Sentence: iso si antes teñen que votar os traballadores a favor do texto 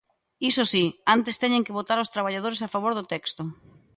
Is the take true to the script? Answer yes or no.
yes